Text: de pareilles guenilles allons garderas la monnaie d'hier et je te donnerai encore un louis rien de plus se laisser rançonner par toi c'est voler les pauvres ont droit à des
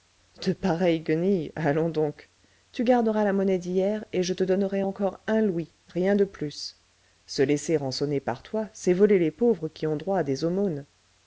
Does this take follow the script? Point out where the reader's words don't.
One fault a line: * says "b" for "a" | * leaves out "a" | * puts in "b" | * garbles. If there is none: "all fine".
* puts in "donc tu"
* puts in "qui"